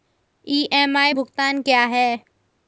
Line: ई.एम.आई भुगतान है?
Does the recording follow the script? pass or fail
fail